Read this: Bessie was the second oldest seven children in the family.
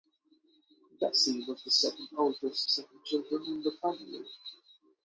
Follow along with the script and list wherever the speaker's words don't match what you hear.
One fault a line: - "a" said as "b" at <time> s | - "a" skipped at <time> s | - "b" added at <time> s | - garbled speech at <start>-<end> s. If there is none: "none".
none